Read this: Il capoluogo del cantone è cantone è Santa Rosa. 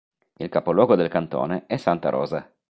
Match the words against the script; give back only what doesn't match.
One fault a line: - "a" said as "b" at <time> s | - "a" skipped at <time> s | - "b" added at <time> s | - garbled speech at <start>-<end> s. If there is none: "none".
- "cantone è" skipped at 1.8 s